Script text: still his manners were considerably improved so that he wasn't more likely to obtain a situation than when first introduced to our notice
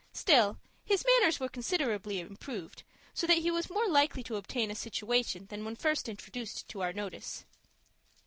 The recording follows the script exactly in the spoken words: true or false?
false